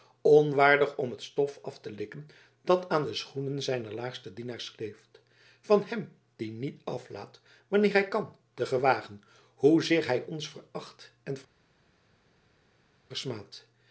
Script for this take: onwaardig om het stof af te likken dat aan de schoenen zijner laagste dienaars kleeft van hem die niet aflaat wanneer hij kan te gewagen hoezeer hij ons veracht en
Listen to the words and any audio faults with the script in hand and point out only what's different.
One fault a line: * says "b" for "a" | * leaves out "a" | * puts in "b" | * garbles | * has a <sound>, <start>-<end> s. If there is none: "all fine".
all fine